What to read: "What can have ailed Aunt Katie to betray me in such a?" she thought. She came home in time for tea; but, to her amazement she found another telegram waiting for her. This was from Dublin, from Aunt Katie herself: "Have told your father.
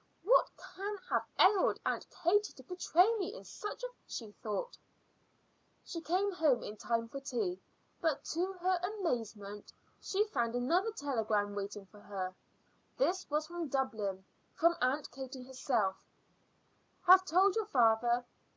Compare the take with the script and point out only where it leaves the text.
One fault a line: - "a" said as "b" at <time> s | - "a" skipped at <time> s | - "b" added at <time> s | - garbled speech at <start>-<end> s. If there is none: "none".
none